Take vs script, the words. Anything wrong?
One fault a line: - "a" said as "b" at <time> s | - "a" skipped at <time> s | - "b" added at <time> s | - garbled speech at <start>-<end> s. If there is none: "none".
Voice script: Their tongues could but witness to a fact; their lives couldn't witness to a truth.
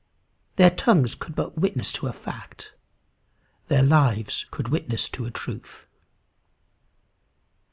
- "couldn't" said as "could" at 4.5 s